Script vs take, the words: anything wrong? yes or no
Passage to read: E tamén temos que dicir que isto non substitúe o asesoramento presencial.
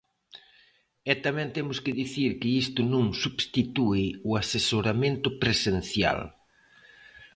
no